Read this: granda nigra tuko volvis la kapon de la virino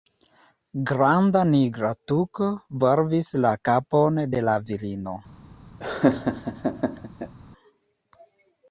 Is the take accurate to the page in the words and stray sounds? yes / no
no